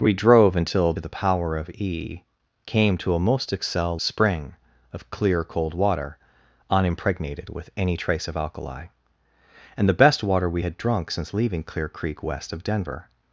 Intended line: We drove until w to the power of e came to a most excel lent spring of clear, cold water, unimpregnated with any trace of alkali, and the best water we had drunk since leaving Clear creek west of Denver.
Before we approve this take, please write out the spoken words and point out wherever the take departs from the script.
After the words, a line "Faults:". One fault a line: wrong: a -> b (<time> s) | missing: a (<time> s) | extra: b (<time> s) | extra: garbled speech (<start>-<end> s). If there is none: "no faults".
We drove until the power of e came to a most excel spring of clear, cold water, unimpregnated with any trace of alkali, and the best water we had drunk since leaving Clear creek west of Denver.
Faults:
missing: w to (0.9 s)
missing: lent (4.0 s)